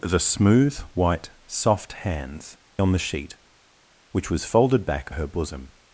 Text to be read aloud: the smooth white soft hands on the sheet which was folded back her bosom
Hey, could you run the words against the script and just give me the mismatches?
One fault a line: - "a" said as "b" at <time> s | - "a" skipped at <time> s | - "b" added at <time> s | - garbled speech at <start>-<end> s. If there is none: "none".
none